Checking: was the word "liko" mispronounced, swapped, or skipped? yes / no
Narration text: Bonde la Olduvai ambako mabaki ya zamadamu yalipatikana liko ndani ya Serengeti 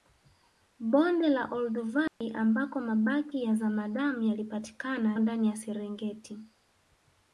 yes